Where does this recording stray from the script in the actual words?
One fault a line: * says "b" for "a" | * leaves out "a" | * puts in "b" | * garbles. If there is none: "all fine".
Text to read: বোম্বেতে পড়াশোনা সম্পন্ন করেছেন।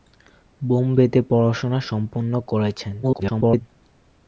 * garbles